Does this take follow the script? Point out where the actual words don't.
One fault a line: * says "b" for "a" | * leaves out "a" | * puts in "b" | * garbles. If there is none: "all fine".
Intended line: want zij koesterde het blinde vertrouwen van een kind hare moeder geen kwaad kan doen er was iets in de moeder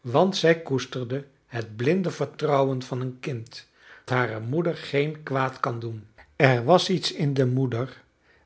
all fine